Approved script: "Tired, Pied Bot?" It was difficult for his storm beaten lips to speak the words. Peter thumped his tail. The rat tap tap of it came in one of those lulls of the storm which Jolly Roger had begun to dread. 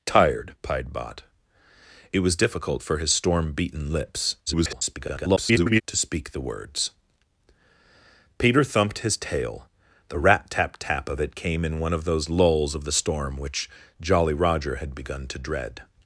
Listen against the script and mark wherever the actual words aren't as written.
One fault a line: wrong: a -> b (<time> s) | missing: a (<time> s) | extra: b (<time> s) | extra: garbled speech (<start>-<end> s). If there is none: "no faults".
extra: garbled speech (4.5-5.8 s)